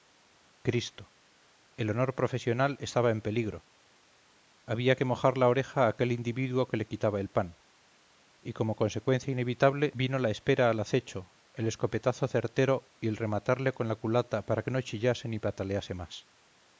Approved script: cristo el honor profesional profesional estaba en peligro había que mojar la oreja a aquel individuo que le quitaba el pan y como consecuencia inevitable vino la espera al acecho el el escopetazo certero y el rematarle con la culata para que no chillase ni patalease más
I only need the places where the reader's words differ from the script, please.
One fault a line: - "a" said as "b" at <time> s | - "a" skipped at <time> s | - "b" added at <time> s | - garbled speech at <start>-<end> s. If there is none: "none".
- "profesional" skipped at 2.8 s
- "el" skipped at 11.7 s